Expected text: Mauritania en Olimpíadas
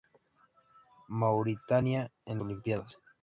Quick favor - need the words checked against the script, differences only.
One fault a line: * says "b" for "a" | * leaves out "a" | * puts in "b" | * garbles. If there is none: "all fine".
all fine